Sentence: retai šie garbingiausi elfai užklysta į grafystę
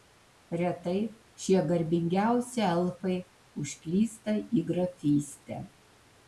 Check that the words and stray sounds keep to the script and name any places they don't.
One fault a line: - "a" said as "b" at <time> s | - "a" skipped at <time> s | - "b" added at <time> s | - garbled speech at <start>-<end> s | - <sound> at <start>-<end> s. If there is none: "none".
none